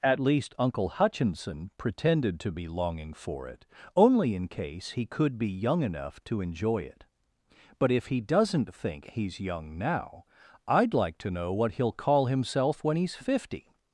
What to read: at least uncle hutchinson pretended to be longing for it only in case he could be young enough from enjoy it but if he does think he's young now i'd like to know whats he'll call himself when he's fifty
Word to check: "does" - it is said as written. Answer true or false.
false